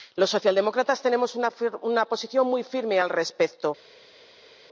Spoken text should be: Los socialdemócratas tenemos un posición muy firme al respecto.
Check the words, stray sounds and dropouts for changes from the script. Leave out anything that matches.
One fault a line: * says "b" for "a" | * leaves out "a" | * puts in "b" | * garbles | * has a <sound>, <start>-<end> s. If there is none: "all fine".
* says "una" for "un"